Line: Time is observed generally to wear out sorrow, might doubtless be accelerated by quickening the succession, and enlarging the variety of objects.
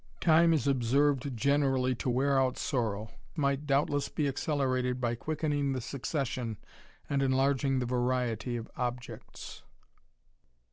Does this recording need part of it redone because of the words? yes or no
no